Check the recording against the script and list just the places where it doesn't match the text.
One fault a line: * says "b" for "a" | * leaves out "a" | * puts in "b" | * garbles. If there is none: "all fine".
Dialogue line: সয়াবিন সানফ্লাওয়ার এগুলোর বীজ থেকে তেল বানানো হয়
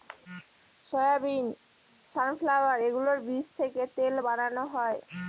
all fine